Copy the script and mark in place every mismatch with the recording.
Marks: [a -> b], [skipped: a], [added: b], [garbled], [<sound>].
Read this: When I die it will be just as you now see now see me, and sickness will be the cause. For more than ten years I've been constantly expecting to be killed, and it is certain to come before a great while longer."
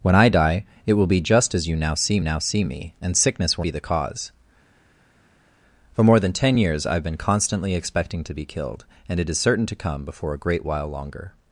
When I die it will be just as you now see now see me, and sickness will be the cause. For more than ten years I've been constantly expecting to be killed, and it is certain to come before a great while longer."